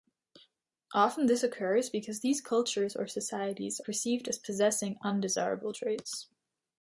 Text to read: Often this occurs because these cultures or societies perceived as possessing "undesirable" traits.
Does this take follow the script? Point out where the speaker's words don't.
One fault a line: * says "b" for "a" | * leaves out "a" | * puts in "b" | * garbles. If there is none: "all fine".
all fine